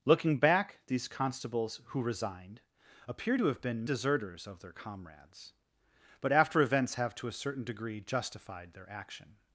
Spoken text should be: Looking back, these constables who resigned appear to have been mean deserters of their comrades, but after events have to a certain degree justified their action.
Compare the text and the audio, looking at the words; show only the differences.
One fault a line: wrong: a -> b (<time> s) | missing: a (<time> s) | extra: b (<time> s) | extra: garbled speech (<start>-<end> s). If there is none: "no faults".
missing: mean (3.9 s)